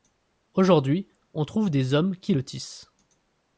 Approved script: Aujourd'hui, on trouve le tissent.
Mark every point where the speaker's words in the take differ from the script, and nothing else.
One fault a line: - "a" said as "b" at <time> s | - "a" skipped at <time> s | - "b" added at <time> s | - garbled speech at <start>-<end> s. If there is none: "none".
- "des hommes qui" added at 1.7 s